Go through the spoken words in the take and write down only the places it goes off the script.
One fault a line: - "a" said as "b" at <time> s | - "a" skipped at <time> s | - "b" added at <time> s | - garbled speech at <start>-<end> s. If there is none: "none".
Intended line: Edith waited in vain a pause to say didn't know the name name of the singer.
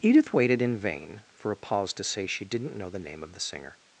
- "for" added at 1.4 s
- "she" added at 2.2 s
- "name" skipped at 3.2 s